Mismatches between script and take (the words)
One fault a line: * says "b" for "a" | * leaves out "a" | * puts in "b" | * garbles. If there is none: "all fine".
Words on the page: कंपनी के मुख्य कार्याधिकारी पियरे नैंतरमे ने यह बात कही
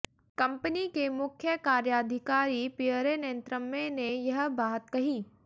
all fine